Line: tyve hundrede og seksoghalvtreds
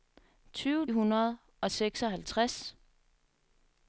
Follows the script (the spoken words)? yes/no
yes